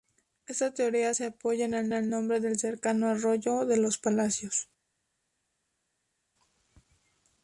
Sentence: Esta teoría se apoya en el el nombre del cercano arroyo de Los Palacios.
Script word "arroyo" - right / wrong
right